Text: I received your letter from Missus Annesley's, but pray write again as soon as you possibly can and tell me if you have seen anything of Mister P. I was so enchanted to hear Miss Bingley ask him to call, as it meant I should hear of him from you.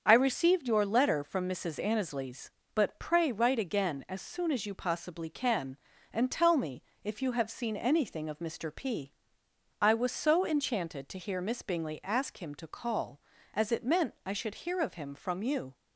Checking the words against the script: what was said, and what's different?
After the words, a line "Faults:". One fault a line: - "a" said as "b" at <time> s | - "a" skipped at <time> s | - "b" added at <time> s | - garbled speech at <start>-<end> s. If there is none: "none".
I received your letter from Missus Annesley's, but pray write again as soon as you possibly can and tell me if you have seen anything of Mister P. I was so enchanted to hear Miss Bingley ask him to call, as it meant I should hear of him from you.
Faults:
none